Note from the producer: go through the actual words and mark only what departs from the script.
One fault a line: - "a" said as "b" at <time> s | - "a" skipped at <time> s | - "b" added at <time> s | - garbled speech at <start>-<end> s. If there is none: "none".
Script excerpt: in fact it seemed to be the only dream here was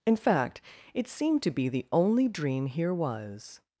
none